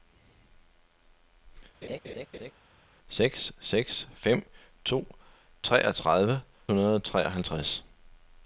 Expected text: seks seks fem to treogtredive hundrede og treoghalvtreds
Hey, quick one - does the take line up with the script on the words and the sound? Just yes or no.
no